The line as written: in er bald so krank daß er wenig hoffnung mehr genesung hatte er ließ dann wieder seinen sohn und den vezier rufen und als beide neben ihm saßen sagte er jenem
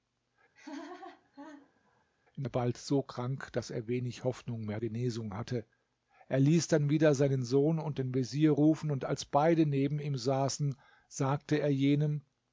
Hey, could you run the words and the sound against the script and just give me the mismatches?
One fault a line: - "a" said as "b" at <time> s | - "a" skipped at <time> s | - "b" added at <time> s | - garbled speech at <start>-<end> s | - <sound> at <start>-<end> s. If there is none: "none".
- laugh at 0.5-2.1 s